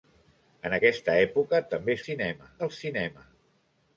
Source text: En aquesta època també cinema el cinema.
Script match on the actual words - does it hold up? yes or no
yes